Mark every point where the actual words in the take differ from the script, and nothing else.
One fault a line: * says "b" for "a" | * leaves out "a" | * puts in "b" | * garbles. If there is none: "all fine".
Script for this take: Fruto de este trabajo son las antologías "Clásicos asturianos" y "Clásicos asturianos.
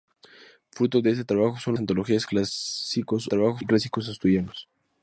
* leaves out "las"
* says "trabajo" for "asturianos"